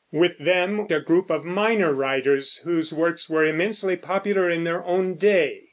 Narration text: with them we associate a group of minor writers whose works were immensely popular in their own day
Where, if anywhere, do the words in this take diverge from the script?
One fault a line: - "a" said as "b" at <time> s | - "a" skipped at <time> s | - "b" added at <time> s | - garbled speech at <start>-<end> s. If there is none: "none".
- "we associate" skipped at 0.9 s